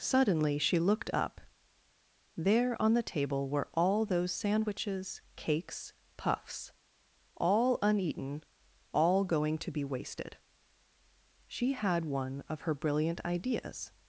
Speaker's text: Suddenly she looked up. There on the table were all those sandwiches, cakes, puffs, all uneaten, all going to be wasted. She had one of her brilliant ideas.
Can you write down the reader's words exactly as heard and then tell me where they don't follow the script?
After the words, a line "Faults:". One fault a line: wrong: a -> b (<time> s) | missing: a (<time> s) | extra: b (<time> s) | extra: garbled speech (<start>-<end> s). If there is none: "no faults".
Suddenly she looked up. There on the table were all those sandwiches, cakes, puffs, all uneaten, all going to be wasted. She had one of her brilliant ideas.
Faults:
no faults